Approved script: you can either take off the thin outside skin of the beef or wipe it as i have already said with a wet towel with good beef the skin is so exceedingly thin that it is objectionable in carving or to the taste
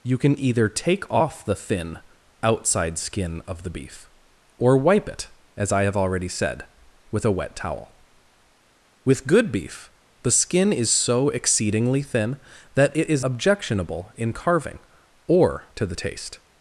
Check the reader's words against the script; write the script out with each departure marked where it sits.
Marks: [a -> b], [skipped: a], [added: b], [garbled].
you can either take off the thin outside skin of the beef or wipe it as i have already said with a wet towel with good beef the skin is so exceedingly thin that it is objectionable in carving or to the taste